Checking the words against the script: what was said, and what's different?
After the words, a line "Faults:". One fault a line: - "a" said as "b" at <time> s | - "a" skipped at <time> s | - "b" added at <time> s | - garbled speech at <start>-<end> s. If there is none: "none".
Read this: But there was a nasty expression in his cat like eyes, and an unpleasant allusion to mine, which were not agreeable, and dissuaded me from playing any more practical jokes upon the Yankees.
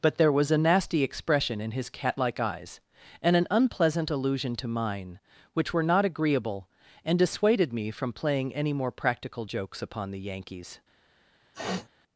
But there was a nasty expression in his cat like eyes, and an unpleasant allusion to mine, which were not agreeable, and dissuaded me from playing any more practical jokes upon the Yankees.
Faults:
none